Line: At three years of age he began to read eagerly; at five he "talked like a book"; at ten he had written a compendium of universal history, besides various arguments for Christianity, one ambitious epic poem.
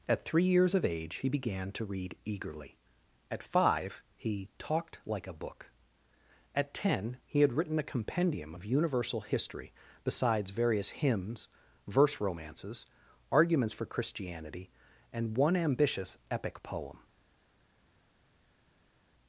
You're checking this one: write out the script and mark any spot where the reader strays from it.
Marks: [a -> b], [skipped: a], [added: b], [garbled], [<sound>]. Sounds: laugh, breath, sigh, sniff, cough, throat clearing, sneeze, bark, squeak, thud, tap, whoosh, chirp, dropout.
At three years of age he began to read eagerly; at five he "talked like a book"; at ten he had written a compendium of universal history, besides various [added: hymns verse romances] arguments for Christianity, [added: and] one ambitious epic poem.